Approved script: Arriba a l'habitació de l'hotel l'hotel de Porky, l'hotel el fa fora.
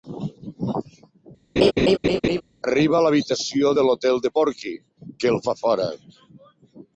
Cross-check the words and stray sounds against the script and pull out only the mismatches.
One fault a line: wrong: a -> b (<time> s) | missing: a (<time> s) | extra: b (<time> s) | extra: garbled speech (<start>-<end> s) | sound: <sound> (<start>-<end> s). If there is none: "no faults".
sound: laugh (1.6-2.4 s)
missing: l'hotel (4.2 s)
wrong: l'hotel -> que (5.2 s)